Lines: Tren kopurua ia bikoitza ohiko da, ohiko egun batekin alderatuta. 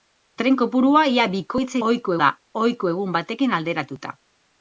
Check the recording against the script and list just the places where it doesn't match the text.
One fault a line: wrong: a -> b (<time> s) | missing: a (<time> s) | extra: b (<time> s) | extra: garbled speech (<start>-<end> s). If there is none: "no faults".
no faults